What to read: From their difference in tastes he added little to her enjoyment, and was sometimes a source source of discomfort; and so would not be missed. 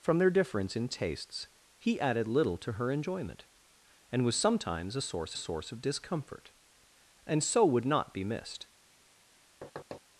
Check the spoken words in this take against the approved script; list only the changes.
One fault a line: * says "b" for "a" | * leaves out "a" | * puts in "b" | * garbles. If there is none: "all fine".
all fine